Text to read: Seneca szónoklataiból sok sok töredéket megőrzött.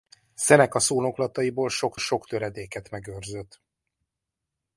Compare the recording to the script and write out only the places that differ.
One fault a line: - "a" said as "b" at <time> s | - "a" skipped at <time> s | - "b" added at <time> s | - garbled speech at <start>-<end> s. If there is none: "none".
none